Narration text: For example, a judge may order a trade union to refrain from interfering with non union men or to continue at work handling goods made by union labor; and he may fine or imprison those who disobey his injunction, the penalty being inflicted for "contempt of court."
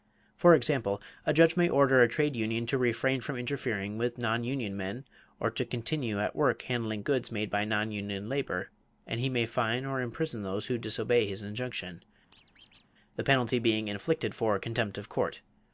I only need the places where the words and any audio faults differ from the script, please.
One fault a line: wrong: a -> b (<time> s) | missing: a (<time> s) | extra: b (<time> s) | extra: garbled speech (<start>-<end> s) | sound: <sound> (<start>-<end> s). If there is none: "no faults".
extra: non (7.7 s)
sound: squeak (12.3-12.9 s)